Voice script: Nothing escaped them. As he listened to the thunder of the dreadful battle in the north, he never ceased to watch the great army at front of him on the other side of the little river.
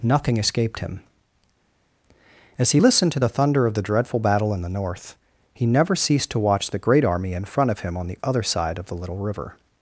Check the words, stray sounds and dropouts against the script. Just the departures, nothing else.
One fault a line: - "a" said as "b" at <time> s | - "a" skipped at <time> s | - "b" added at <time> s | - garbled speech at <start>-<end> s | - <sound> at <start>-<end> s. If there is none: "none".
- "them" said as "him" at 0.8 s
- "at" said as "in" at 7.3 s